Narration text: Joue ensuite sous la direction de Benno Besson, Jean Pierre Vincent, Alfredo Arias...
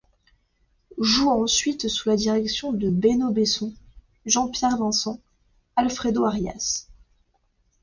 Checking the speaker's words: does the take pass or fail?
pass